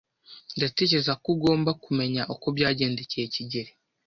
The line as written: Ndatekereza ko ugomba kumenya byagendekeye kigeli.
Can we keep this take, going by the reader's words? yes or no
no